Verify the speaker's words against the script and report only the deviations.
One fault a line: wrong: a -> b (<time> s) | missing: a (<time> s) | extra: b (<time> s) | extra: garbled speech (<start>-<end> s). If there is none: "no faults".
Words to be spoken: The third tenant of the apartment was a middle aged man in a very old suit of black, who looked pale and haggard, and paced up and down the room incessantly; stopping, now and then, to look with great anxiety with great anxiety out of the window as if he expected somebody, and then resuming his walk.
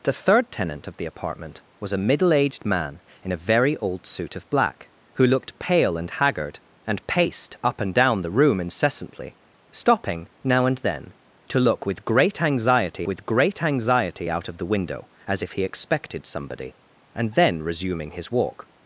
no faults